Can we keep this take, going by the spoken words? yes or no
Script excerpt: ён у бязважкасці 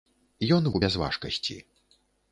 yes